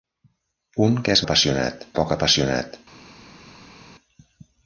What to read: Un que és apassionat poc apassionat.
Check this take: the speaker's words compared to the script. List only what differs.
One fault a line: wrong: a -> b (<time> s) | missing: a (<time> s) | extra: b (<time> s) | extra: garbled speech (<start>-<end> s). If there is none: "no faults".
no faults